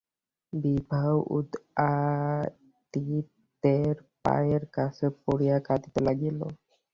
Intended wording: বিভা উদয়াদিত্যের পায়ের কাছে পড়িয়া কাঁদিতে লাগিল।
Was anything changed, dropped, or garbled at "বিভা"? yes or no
no